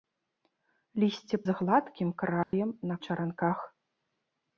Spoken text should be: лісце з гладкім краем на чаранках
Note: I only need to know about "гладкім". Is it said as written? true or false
true